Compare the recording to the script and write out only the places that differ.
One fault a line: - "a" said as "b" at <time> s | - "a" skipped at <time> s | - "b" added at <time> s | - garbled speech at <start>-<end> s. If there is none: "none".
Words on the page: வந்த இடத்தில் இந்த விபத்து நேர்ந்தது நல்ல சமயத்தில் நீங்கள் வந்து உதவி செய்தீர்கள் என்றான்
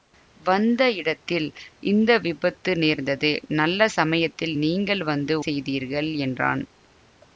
- "உதவி" skipped at 5.4 s